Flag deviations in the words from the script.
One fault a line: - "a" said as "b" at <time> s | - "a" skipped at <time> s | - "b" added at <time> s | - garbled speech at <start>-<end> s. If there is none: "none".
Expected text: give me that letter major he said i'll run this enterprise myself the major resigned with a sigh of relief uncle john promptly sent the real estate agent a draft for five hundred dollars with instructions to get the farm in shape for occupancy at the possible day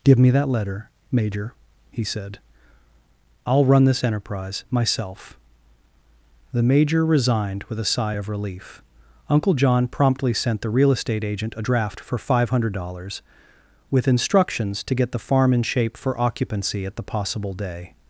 none